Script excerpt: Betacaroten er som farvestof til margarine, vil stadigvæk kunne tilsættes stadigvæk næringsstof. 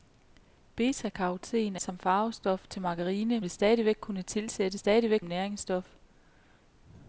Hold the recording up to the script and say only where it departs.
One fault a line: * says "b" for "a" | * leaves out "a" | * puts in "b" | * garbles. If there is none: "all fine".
all fine